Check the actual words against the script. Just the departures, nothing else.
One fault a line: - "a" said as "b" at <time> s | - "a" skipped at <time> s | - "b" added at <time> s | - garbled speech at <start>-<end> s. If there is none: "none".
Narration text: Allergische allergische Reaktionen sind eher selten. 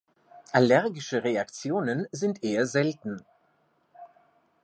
- "allergische" skipped at 1.2 s